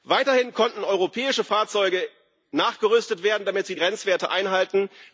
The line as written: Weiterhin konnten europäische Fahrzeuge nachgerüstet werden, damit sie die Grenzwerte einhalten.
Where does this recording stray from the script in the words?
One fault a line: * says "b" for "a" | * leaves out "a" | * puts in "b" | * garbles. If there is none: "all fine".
* leaves out "die"